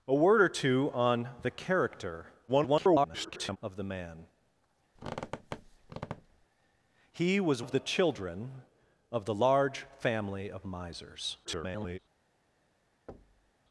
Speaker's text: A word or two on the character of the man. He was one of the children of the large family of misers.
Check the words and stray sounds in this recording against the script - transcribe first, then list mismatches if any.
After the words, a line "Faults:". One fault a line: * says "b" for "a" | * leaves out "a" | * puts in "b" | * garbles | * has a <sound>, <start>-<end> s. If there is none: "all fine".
A word or two on the character [garbled] of the man. He was of the children of the large family of misers. [garbled]
Faults:
* garbles
* has a squeak, 5.0-6.5 s
* leaves out "one"
* garbles
* has a thud, 13.1-13.5 s